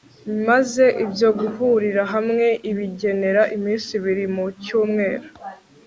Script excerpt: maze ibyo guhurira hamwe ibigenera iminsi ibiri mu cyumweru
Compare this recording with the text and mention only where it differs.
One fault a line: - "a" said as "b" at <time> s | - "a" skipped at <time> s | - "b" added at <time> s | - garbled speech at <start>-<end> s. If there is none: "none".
none